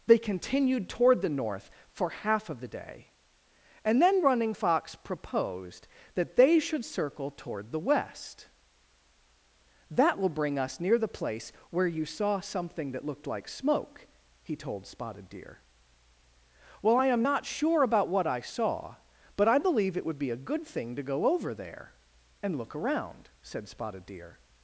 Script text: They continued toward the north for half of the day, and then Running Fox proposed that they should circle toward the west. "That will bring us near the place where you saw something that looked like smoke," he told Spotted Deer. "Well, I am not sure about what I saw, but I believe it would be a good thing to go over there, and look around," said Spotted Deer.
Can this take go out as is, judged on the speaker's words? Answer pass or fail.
pass